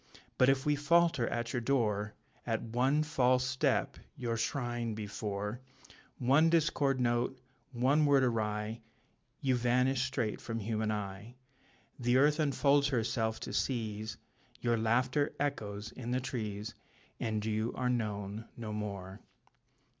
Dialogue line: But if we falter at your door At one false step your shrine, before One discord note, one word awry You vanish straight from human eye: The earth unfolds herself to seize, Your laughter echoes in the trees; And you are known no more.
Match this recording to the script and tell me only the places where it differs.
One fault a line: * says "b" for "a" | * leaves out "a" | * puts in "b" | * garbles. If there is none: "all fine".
all fine